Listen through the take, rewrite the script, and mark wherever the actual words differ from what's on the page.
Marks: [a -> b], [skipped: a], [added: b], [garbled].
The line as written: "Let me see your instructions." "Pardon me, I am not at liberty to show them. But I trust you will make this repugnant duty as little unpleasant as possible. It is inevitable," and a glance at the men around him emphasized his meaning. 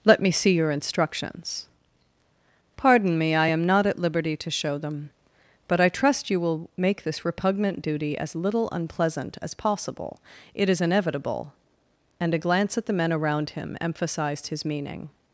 "Let me see your instructions." "Pardon me, I am not at liberty to show them. But I trust you will make this repugnant duty as little unpleasant as possible. It is inevitable," and a glance at the men around him emphasized his meaning.